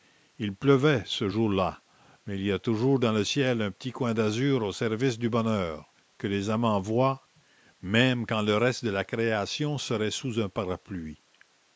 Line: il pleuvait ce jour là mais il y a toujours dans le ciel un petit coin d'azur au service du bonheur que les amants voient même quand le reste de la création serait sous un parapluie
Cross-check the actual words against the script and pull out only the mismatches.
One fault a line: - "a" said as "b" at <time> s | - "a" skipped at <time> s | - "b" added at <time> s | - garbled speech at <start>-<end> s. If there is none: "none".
none